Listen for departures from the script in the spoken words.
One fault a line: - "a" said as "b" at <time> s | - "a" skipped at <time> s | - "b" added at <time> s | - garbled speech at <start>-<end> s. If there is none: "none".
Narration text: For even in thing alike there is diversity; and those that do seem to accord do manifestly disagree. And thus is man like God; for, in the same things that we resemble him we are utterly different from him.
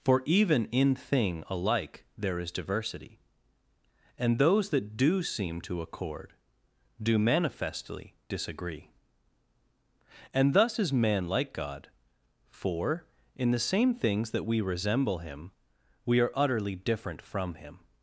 none